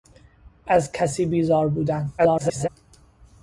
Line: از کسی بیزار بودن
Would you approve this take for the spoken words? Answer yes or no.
no